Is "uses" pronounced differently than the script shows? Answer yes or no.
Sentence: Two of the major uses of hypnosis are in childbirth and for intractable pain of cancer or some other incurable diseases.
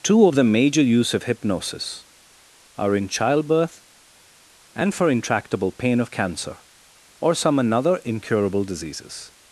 yes